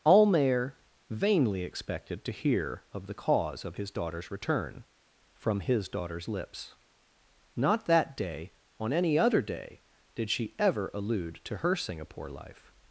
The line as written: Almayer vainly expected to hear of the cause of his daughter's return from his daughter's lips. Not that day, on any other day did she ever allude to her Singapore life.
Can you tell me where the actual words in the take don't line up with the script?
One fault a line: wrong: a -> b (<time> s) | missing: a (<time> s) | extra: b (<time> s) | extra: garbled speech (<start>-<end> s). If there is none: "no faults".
no faults